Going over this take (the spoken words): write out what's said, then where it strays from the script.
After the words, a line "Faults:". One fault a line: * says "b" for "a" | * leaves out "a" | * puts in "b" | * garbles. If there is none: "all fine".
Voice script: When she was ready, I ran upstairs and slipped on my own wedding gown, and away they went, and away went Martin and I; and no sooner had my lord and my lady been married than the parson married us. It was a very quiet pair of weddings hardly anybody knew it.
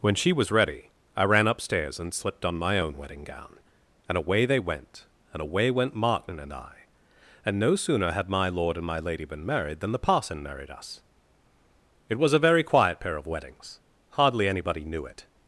When she was ready, I ran upstairs and slipped on my own wedding gown, and away they went, and away went Martin and I; and no sooner had my lord and my lady been married than the parson married us. It was a very quiet pair of weddings hardly anybody knew it.
Faults:
all fine